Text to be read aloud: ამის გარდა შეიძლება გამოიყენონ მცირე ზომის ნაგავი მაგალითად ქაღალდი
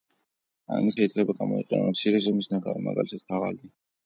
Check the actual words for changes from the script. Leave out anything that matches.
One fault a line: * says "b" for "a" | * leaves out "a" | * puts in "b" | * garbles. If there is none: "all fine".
* leaves out "გარდა"